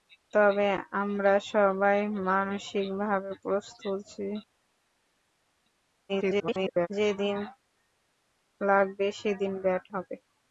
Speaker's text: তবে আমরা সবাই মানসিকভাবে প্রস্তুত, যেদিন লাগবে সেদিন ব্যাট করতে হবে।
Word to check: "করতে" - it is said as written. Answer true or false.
false